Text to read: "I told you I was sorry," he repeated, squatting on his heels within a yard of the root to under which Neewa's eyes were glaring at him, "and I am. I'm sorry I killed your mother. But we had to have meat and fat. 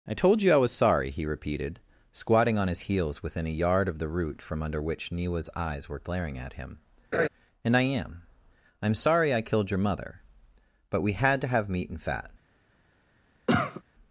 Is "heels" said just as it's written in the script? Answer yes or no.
yes